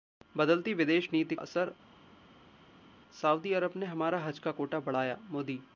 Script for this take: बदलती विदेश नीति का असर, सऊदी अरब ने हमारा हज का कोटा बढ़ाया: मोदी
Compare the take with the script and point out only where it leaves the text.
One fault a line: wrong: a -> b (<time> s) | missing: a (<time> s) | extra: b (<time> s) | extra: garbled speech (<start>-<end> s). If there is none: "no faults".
missing: का (1.4 s)